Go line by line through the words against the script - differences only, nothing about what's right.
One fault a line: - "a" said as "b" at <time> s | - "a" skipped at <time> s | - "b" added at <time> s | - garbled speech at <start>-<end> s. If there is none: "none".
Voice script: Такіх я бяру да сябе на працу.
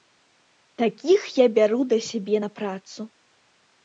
none